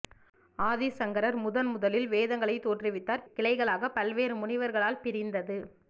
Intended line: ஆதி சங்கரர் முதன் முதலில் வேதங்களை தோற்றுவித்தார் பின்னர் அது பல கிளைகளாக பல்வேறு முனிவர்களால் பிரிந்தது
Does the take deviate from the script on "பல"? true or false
true